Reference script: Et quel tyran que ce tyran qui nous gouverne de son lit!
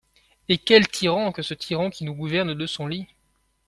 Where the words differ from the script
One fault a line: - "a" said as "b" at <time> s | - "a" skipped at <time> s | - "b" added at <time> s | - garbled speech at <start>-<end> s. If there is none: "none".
none